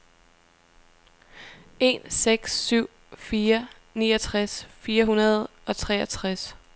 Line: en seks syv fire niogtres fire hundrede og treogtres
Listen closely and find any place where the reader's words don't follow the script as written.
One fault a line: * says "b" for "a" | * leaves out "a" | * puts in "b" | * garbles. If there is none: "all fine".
all fine